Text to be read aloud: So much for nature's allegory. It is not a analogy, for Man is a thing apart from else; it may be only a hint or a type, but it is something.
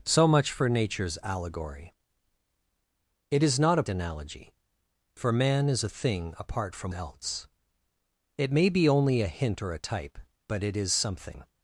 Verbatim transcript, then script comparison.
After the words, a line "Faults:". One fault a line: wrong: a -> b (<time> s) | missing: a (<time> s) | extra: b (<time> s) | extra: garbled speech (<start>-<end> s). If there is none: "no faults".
So much for nature's allegory. It is not a analogy, for Man is a thing apart from else; it may be only a hint or a type, but it is something.
Faults:
no faults